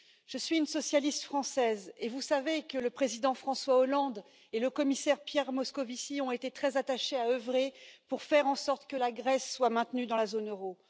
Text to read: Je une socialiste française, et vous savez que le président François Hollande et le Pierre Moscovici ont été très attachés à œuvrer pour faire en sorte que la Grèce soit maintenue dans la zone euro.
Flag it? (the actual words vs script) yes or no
yes